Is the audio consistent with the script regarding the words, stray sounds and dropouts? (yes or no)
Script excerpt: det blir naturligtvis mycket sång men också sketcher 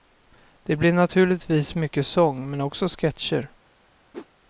no